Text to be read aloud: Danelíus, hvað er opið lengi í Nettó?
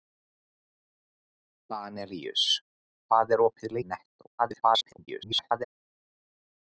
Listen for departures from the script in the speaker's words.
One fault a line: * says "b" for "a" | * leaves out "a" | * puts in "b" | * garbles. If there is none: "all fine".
* leaves out "lengi"
* garbles